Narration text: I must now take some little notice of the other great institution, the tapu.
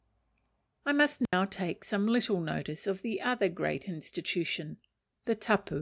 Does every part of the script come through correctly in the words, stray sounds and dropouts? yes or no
no